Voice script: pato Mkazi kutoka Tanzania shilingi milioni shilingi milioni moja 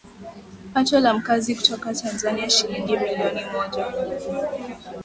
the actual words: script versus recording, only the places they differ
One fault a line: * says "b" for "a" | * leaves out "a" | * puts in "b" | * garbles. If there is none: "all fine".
* puts in "la"
* leaves out "shilingi milioni"